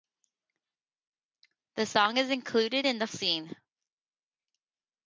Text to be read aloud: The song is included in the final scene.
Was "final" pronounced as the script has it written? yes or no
no